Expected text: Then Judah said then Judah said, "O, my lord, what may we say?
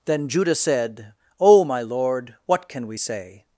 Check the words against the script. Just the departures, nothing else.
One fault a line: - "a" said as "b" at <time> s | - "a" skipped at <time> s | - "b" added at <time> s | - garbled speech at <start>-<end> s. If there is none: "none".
- "then Judah said" skipped at 1.1 s
- "may" said as "can" at 2.7 s